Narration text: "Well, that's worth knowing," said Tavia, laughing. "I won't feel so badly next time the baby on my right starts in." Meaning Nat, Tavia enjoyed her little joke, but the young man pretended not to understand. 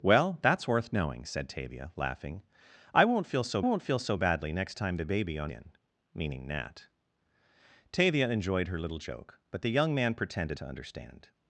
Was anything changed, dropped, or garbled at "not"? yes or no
yes